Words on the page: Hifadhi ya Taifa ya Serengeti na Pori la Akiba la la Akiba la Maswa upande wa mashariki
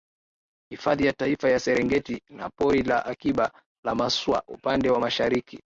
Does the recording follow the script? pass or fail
fail